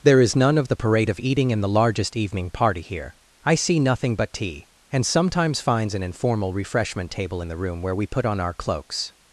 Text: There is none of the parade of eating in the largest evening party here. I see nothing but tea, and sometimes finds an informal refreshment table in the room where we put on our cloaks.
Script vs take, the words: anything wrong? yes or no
no